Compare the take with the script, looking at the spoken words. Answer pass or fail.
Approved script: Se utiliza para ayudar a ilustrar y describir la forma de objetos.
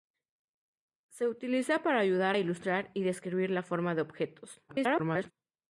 fail